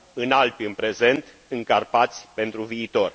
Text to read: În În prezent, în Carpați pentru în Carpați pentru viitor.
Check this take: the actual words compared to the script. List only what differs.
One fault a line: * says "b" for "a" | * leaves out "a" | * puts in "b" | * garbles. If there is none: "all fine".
* puts in "Alpi"
* leaves out "în Carpați pentru"